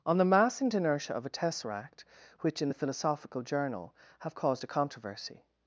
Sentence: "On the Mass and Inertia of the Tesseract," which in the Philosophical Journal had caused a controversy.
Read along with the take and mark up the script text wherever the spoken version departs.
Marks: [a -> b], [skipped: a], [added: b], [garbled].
"On the Mass and Inertia of [the -> a] Tesseract," which in the Philosophical Journal [had -> have] caused a controversy.